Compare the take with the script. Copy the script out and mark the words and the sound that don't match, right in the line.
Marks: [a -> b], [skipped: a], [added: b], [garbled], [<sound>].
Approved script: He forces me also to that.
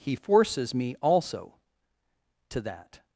He forces me also to that.